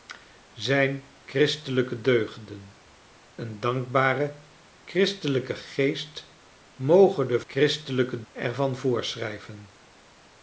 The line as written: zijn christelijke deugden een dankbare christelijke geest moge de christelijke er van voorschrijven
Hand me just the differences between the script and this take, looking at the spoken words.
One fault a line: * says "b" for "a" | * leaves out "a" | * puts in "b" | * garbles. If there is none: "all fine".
all fine